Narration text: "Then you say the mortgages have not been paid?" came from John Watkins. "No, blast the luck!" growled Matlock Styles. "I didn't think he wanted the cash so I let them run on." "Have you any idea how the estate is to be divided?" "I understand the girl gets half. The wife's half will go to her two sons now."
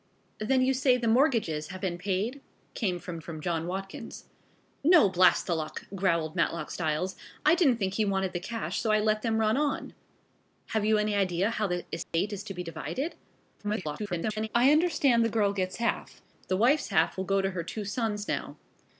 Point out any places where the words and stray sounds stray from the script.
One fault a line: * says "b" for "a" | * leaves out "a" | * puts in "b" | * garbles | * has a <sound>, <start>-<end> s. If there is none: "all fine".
* leaves out "not"
* puts in "from"
* has a dropout, 12.0-12.1 s
* garbles